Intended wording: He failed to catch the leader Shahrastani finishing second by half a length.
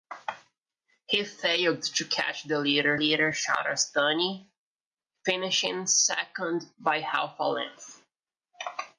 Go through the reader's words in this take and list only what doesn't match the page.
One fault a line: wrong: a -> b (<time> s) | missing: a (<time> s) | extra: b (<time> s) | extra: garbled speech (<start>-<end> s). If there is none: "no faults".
extra: leader (2.9 s)